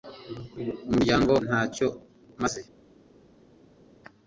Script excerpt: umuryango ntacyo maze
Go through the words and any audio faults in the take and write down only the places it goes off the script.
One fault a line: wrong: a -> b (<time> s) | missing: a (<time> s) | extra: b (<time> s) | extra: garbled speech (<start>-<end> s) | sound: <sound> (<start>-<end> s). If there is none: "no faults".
no faults